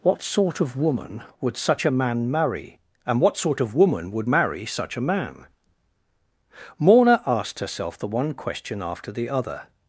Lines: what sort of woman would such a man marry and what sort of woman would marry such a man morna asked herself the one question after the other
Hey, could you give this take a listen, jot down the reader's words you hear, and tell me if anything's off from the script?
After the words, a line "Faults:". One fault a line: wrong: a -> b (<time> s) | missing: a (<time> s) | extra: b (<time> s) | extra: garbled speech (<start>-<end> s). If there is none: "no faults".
what sort of woman would such a man marry and what sort of woman would marry such a man morna asked herself the one question after the other
Faults:
no faults